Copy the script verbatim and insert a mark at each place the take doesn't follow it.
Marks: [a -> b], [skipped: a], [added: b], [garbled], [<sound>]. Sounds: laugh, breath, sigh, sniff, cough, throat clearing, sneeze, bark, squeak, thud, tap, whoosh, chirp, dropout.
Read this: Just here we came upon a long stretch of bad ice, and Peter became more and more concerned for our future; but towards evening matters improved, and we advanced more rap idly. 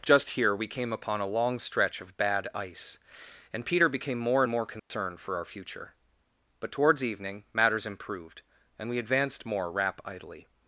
Just here we came upon a long stretch of bad ice, and Peter became more and more concerned [dropout] for our future; but towards evening matters improved, and we advanced more rap idly.